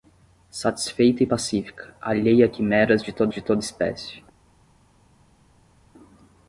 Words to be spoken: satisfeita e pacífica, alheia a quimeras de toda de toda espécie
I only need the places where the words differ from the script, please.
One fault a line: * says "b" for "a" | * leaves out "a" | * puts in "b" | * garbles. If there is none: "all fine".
all fine